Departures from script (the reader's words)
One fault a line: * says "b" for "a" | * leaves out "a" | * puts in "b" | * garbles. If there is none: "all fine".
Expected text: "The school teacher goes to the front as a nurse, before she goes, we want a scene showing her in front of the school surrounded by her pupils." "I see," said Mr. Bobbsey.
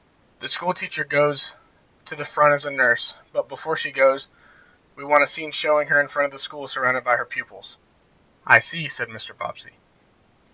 * puts in "but"